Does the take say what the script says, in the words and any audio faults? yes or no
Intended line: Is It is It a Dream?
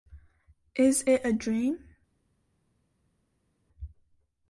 no